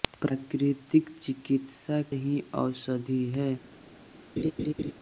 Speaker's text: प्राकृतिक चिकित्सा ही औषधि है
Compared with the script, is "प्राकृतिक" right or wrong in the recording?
right